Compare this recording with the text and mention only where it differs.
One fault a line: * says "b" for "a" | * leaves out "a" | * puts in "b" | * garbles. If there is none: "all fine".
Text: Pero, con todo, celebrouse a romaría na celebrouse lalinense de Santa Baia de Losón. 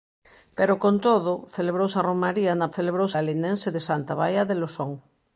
all fine